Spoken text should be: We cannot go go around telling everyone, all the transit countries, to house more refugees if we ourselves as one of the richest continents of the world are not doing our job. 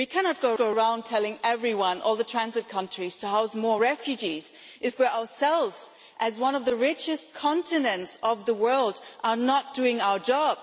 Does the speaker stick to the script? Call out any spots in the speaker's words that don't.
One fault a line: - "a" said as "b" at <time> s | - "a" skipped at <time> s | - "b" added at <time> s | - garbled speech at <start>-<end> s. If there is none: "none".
none